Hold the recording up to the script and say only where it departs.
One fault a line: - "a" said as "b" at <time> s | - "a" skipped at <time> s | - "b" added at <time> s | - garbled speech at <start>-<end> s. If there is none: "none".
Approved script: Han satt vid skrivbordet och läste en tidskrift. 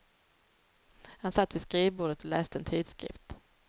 none